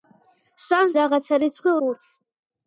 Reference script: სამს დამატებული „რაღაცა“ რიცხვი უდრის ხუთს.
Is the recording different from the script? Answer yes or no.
yes